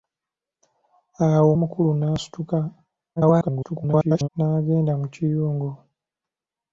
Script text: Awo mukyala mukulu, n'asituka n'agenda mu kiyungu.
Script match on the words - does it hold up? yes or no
no